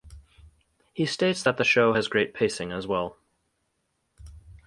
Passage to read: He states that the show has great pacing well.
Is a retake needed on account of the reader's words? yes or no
yes